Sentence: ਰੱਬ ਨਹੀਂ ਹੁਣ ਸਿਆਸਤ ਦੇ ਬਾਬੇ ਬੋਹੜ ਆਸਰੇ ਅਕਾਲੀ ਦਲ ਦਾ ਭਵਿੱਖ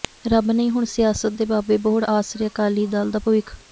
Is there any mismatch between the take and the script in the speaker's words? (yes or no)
no